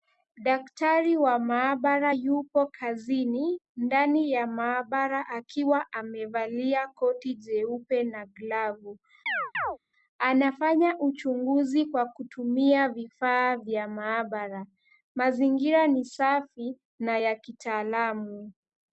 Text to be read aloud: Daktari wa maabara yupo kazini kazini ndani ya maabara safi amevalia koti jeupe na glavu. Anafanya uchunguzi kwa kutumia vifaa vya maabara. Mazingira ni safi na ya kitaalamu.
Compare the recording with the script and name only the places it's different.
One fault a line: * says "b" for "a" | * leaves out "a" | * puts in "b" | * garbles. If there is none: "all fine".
* leaves out "kazini"
* says "akiwa" for "safi"